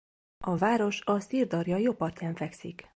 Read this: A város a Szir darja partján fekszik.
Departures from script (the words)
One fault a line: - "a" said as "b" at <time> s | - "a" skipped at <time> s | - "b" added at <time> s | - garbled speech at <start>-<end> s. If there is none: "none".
- "jobb" added at 1.8 s